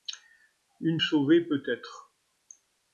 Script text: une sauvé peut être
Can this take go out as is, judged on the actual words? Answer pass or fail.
pass